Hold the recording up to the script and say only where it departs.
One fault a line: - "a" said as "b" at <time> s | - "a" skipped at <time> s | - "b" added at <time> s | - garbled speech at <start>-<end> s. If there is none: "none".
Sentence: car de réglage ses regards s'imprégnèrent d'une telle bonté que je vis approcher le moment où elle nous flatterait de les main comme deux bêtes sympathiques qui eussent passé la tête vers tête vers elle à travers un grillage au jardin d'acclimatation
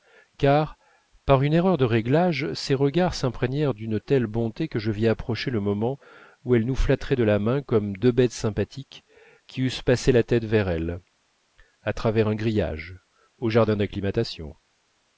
- "par une erreur" added at 1.3 s
- "les" said as "la" at 7.2 s
- "tête vers" skipped at 10.7 s